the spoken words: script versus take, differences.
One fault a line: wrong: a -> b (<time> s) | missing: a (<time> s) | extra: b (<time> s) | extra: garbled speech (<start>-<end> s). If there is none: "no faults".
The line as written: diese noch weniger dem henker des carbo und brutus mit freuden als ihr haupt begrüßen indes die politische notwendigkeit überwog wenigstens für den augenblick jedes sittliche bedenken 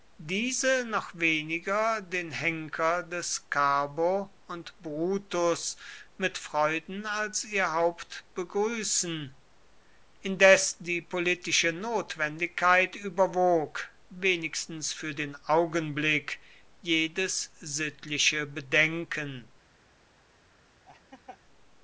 wrong: dem -> den (2.0 s)